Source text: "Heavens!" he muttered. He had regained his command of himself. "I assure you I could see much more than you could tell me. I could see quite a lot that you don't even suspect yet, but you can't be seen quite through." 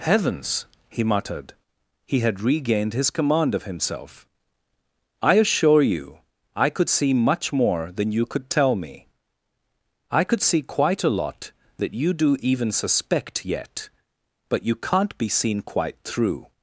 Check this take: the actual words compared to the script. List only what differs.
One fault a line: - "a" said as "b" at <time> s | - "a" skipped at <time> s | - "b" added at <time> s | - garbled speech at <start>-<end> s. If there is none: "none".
- "don't" said as "do" at 12.1 s